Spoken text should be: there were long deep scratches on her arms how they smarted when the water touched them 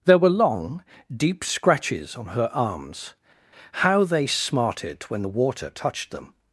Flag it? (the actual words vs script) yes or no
no